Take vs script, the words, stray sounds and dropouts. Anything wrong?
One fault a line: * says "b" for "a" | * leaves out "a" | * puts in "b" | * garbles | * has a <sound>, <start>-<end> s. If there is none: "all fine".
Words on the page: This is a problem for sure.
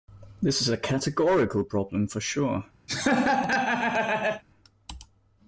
* puts in "categorical"
* has a laugh, 2.9-4.4 s